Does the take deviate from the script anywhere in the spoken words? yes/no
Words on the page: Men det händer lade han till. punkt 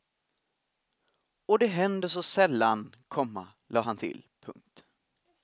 yes